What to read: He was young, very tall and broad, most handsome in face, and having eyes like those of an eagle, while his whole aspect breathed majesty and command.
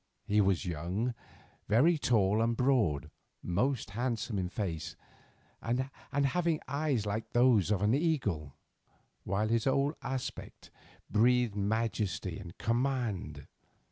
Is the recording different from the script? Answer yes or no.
no